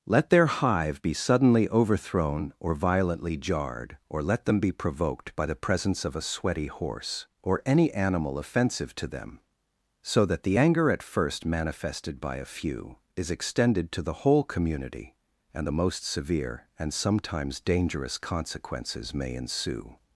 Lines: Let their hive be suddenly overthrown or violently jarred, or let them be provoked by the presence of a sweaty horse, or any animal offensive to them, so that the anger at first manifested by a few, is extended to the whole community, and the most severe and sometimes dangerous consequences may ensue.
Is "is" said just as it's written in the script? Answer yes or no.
yes